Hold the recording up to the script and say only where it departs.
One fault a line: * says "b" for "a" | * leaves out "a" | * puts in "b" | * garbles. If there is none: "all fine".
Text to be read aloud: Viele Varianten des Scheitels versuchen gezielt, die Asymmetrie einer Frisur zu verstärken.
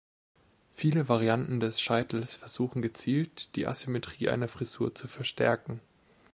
all fine